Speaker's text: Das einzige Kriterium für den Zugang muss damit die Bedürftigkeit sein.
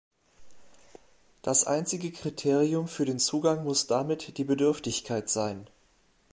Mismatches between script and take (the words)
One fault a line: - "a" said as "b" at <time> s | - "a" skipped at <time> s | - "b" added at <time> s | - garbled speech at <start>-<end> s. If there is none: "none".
none